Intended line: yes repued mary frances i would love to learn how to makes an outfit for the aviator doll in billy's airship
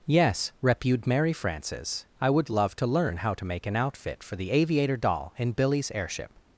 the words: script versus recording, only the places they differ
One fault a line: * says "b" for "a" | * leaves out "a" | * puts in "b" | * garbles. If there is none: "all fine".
* says "make" for "makes"